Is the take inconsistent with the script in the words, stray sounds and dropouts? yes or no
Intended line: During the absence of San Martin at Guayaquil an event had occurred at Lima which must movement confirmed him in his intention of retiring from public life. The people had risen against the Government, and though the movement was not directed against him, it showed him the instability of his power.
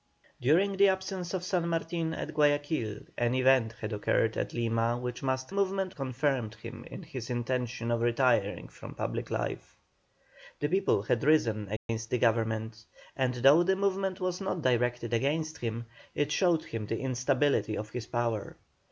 yes